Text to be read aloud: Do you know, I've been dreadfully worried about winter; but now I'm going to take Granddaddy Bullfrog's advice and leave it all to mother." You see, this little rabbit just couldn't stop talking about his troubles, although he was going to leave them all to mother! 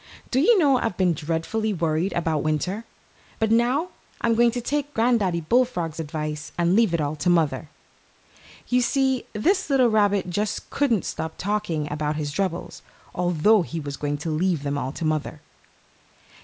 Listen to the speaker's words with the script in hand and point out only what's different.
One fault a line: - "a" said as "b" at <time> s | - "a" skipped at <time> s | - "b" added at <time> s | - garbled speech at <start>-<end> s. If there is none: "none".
none